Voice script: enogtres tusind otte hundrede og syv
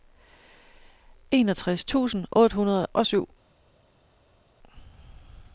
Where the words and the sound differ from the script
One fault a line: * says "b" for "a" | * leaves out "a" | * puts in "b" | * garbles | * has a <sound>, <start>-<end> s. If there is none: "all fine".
all fine